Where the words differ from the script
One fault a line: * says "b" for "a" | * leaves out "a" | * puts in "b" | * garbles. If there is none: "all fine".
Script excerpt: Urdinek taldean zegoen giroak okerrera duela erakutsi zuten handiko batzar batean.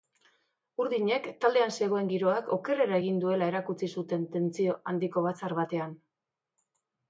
* puts in "egin"
* puts in "tentsio"